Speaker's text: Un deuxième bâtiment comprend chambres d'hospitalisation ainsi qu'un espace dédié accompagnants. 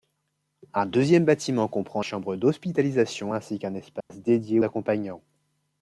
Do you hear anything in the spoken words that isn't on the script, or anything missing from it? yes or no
no